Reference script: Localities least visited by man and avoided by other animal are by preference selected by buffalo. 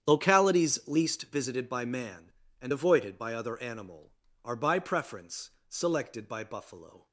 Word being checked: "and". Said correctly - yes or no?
yes